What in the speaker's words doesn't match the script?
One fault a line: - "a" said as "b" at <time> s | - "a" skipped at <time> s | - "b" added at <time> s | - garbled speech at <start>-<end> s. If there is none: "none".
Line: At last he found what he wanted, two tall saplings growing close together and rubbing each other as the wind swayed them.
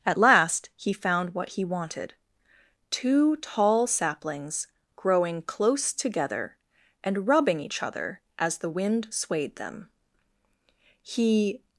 - "He" added at 11.0 s